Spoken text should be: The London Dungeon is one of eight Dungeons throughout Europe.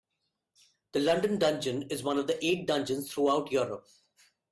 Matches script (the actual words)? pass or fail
pass